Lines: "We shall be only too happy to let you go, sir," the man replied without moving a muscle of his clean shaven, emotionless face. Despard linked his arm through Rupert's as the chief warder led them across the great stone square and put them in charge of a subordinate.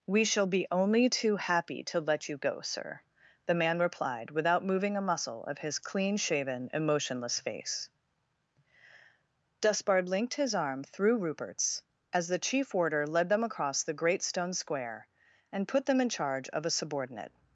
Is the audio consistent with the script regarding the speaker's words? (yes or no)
yes